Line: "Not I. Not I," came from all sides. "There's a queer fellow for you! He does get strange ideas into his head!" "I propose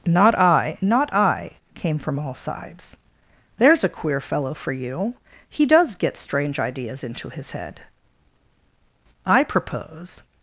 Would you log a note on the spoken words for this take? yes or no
no